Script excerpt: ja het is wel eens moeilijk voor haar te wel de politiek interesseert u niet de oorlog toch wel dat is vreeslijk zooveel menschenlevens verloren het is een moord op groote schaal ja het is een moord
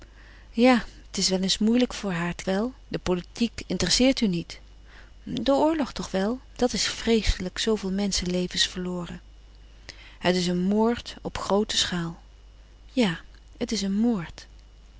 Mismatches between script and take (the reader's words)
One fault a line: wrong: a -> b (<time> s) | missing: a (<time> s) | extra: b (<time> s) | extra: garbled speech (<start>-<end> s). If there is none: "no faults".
no faults